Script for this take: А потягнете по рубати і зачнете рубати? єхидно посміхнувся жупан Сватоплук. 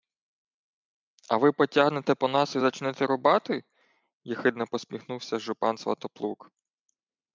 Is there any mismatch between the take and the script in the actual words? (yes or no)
yes